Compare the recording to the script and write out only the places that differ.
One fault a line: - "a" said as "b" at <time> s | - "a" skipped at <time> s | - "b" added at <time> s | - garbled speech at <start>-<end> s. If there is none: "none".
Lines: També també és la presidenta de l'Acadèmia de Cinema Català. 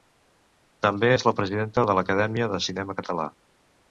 - "també" skipped at 1.1 s